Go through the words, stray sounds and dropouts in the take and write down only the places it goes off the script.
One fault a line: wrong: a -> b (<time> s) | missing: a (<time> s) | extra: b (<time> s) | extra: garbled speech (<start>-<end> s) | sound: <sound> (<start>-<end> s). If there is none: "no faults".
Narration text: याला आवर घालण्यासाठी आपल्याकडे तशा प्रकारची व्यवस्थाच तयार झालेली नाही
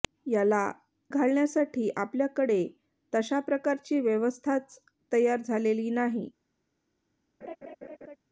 missing: आवर (0.6 s)
sound: laugh (7.4-8.2 s)